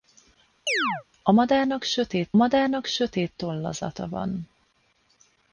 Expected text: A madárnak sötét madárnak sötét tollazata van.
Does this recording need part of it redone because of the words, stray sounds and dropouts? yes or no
yes